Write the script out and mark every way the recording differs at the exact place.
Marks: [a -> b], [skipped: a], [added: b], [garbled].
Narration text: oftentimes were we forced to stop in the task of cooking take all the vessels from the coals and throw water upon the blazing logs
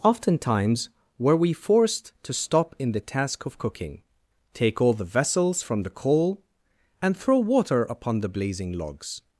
oftentimes were we forced to stop in the task of cooking take all the vessels from the [coals -> coal] and throw water upon the blazing logs